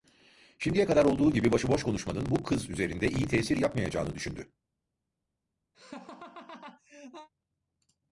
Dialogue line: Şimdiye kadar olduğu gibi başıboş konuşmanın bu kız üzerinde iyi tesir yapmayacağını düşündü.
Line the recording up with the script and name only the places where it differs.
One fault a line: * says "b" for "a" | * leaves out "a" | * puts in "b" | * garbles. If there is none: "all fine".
all fine